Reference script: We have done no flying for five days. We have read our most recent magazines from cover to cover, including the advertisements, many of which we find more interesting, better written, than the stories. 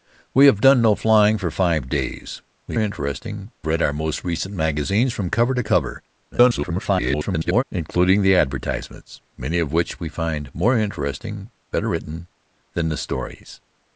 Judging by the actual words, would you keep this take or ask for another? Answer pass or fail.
fail